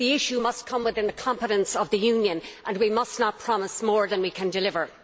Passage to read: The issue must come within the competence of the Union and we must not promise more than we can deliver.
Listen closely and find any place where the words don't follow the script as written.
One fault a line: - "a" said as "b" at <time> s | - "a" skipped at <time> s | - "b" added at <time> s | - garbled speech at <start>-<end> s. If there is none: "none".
none